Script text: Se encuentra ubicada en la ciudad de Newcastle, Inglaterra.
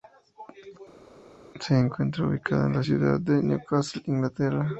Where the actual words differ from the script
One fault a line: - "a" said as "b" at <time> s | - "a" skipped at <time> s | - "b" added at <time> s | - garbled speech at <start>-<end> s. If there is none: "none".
none